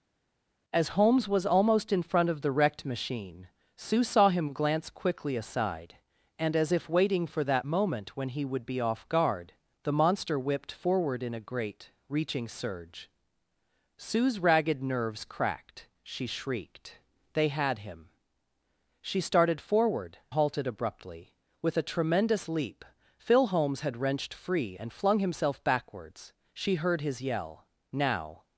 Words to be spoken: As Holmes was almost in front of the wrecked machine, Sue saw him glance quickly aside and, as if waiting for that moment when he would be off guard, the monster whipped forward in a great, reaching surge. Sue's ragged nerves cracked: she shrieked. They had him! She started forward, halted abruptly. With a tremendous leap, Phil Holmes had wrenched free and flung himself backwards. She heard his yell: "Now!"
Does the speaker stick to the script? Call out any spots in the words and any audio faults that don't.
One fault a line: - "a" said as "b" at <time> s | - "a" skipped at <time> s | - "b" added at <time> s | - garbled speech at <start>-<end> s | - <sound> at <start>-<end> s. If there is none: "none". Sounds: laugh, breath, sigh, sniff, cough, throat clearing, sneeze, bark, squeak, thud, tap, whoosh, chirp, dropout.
none